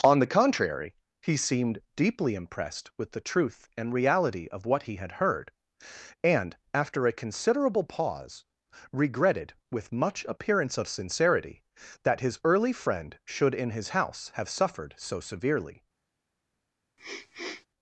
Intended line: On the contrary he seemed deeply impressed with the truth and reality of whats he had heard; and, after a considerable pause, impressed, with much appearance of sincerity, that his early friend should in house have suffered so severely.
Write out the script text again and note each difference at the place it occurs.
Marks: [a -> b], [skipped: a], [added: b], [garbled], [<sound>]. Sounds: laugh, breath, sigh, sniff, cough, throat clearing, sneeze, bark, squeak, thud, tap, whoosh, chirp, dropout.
On the contrary he seemed deeply impressed with the truth and reality of [whats -> what] he had heard; and, after a considerable pause, [impressed, -> regretted] with much appearance of sincerity, that his early friend should in [added: his] house have suffered so severely. [sniff]